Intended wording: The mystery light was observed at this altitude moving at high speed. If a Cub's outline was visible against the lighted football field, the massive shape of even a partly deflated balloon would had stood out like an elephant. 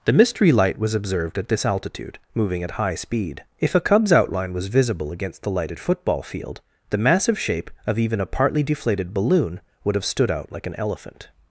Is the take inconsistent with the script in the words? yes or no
yes